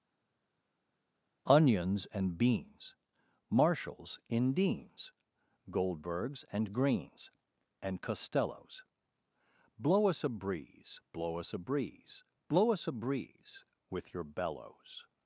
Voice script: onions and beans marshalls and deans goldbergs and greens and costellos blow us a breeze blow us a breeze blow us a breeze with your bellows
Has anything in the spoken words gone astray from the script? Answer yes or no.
yes